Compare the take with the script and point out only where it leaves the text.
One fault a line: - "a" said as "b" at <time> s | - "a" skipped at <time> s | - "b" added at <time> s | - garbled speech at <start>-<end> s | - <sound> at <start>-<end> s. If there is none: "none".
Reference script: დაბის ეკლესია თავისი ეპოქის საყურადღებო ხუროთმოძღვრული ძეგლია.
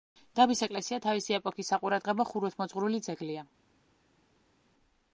none